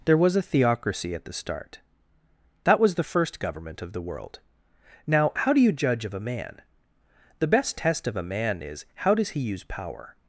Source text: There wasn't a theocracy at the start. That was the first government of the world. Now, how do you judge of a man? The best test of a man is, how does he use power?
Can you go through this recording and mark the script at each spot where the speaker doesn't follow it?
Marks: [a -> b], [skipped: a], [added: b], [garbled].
There [wasn't -> was] a theocracy at the start. That was the first government of the world. Now, how do you judge of a man? The best test of a man is, how does he use power?